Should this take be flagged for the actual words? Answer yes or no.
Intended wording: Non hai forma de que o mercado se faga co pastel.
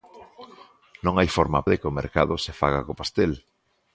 no